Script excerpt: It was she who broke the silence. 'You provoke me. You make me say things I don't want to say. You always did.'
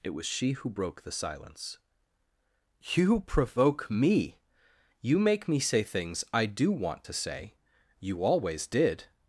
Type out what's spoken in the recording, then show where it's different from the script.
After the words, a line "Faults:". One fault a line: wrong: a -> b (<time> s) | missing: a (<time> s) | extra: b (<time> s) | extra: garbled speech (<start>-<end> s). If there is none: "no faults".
It was she who broke the silence. 'You provoke me. You make me say things I do want to say. You always did.'
Faults:
wrong: don't -> do (6.5 s)